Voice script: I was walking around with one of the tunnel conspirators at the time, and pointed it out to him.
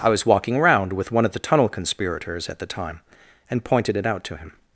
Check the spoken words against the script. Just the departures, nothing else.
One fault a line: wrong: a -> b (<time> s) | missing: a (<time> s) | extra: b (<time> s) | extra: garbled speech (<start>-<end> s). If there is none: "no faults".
no faults